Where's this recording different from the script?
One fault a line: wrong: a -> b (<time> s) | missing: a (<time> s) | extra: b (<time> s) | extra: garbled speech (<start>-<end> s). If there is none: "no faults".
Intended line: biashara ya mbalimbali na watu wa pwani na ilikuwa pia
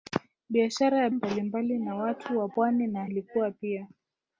no faults